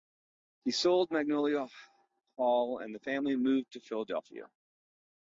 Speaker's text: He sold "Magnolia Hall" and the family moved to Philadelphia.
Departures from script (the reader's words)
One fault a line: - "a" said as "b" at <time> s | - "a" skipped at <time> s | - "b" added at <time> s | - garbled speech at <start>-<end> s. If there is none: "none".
none